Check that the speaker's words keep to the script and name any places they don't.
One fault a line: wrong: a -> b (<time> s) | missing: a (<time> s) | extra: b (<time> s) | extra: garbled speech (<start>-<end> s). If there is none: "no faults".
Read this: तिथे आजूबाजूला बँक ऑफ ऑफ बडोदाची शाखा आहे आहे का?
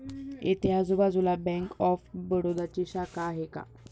wrong: तिथे -> इथे (0.4 s)
missing: ऑफ (2.1 s)
missing: आहे (3.5 s)